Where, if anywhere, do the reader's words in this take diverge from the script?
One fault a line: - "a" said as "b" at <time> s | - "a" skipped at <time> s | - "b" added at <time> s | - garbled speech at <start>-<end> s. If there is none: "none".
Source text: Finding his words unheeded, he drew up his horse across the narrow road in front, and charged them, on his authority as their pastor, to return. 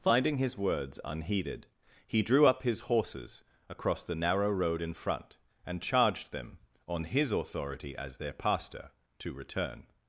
- "horse" said as "horses" at 2.8 s